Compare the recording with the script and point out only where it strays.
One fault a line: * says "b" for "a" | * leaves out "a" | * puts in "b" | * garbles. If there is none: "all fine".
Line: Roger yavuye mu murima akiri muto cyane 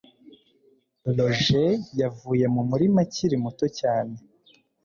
all fine